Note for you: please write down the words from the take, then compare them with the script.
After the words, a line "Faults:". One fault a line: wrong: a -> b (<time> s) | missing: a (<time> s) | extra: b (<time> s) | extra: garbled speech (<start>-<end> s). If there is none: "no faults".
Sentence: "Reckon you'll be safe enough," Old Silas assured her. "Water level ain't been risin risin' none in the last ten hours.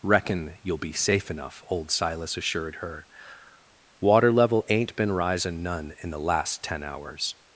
"Reckon you'll be safe enough," Old Silas assured her. "Water level ain't been risin' none in the last ten hours.
Faults:
missing: risin (5.6 s)